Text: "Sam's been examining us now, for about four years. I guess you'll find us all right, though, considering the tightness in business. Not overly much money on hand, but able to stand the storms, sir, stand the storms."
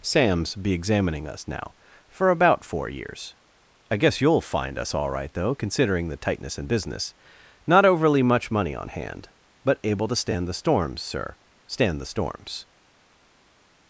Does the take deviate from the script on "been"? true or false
true